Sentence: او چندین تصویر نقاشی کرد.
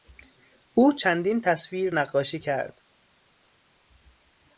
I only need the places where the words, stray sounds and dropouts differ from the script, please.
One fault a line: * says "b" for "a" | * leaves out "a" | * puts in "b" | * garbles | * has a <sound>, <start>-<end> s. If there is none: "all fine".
all fine